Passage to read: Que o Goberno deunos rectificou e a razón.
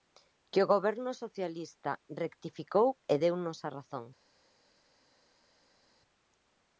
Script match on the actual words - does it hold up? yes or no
no